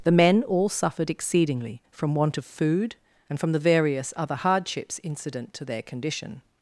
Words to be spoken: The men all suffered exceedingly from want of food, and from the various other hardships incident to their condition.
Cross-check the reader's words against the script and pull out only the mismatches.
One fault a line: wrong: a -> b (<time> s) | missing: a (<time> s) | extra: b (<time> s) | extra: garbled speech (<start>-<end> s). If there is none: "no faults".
no faults